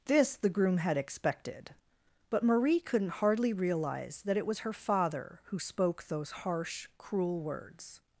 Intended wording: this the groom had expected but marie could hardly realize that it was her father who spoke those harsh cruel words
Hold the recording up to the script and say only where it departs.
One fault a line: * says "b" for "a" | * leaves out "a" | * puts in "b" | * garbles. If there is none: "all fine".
* says "couldn't" for "could"